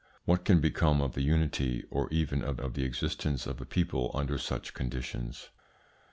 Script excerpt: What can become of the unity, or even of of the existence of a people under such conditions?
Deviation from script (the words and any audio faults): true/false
false